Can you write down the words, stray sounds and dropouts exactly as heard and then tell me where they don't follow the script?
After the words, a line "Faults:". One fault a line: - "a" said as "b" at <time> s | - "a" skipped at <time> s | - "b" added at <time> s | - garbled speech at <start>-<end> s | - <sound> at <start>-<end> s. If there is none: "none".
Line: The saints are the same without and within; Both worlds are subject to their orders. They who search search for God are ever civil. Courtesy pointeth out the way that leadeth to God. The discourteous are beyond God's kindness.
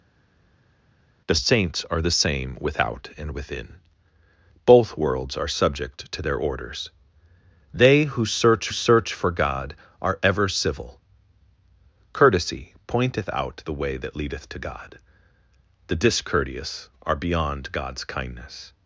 The saints are the same without and within; Both worlds are subject to their orders. They who search search for God are ever civil. Courtesy pointeth out the way that leadeth to God. The discourteous are beyond God's kindness.
Faults:
none